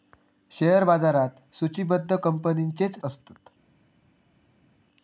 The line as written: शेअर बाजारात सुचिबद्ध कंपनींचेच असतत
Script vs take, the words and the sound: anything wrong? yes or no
no